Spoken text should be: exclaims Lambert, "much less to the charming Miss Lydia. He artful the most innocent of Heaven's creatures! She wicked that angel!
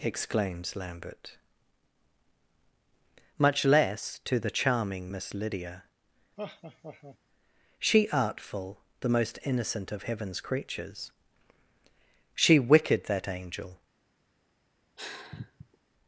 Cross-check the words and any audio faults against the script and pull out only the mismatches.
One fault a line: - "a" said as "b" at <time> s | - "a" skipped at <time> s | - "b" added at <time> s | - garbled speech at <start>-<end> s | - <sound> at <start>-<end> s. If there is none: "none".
- laugh at 6.4-7.2 s
- "He" said as "She" at 7.8 s
- sigh at 15.0-15.8 s